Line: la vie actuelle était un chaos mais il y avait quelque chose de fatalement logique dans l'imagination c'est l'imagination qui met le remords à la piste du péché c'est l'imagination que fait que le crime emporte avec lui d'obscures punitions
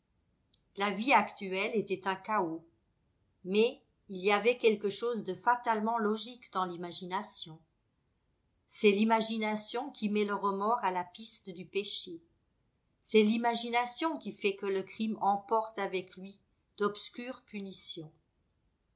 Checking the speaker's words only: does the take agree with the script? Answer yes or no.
no